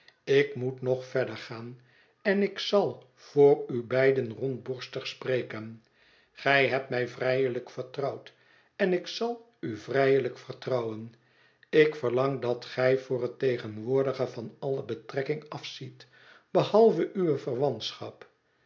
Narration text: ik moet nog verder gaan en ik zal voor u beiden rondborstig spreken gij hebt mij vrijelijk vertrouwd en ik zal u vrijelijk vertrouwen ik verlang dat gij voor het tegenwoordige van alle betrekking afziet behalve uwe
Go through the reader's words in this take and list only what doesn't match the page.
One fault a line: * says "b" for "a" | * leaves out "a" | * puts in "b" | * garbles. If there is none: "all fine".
all fine